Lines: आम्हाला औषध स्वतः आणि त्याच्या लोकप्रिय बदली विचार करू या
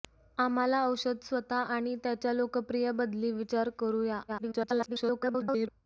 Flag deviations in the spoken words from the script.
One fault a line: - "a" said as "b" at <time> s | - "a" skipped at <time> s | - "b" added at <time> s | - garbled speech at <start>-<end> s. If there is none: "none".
- garbled speech at 4.3-5.7 s